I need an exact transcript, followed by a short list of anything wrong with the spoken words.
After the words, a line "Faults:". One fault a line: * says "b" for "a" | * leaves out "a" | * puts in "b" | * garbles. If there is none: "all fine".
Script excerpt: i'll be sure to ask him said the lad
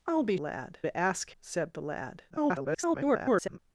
i'll be lad to ask said the lad [garbled]
Faults:
* says "lad" for "sure"
* leaves out "him"
* garbles